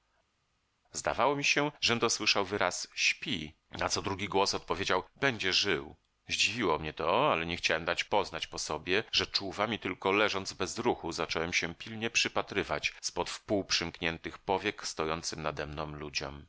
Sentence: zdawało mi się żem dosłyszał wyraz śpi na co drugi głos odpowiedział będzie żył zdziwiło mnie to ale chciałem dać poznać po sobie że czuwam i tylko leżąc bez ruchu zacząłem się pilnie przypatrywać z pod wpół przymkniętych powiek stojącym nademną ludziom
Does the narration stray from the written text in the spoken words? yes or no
yes